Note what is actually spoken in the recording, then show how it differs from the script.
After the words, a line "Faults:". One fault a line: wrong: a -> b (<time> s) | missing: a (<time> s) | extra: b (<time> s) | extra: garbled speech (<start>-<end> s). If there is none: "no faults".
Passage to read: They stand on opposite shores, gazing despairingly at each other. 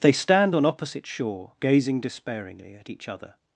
They stand on opposite shore, gazing despairingly at each other.
Faults:
wrong: shores -> shore (1.1 s)